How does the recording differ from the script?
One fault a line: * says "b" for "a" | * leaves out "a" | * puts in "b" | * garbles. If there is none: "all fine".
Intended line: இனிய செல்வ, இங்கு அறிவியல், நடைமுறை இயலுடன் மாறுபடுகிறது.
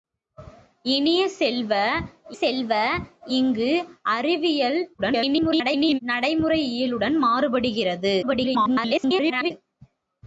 * puts in "செல்வ"
* garbles
* garbles